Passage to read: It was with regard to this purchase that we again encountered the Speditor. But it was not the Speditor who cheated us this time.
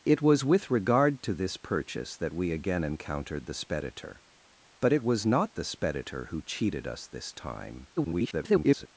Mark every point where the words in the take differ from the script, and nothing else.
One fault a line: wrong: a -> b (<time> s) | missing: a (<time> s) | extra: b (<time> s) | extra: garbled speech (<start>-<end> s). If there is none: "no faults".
extra: garbled speech (8.0-8.9 s)